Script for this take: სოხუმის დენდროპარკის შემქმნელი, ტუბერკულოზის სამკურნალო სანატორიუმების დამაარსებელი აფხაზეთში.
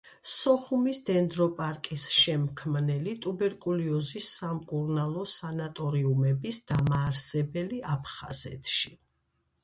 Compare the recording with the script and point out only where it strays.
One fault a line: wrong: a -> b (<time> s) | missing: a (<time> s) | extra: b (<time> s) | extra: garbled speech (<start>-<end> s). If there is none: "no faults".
no faults